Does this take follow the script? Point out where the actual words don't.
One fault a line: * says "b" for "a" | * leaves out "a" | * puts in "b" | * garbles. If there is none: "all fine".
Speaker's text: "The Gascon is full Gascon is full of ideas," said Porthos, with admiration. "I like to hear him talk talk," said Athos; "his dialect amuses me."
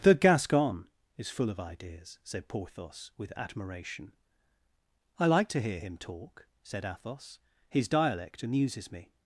* leaves out "Gascon is full"
* leaves out "talk"